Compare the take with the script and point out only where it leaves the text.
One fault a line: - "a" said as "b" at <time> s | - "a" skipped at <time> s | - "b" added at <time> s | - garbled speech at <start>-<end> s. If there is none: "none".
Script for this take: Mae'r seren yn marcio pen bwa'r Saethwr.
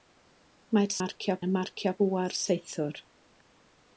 - "seren" said as "marcio" at 1.0 s
- "pen" skipped at 1.9 s